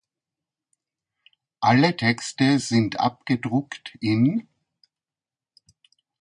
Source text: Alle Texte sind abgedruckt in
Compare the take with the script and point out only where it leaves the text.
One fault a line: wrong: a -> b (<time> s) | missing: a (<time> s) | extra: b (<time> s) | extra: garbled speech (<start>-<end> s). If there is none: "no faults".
no faults